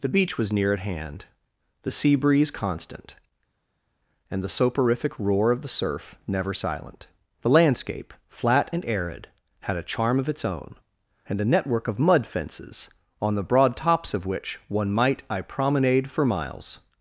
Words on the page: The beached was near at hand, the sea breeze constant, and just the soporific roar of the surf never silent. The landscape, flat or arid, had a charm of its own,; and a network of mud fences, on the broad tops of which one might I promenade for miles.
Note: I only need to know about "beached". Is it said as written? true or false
false